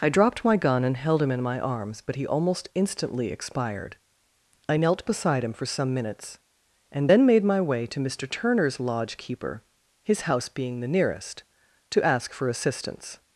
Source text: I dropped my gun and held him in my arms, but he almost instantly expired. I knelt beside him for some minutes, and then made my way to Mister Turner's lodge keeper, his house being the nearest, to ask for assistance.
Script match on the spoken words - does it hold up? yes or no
yes